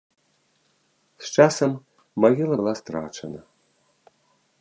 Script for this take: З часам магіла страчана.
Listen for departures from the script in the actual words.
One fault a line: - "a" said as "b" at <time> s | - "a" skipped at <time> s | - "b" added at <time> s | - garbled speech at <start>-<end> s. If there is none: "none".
- "была" added at 2.6 s